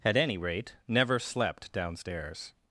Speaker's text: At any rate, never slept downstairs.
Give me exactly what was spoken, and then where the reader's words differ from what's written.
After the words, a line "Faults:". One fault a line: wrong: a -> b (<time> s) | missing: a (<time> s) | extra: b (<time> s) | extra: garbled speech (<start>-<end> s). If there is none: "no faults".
At any rate, never slept downstairs.
Faults:
no faults